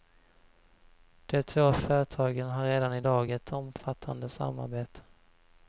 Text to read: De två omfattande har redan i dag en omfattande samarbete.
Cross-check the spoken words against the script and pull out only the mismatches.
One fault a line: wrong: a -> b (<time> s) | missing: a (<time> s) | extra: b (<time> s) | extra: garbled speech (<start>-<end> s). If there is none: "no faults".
wrong: omfattande -> företagen (1.7 s)
wrong: en -> ett (3.3 s)